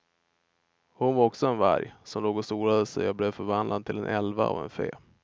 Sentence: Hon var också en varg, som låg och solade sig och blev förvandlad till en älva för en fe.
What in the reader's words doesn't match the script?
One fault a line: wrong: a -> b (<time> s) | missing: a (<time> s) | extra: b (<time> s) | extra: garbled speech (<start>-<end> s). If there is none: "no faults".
wrong: för -> av (4.5 s)